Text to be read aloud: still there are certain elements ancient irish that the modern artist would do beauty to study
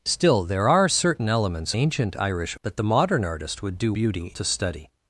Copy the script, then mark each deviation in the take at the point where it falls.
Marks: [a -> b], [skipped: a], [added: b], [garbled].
still there are certain elements ancient irish that the modern artist would do beauty to study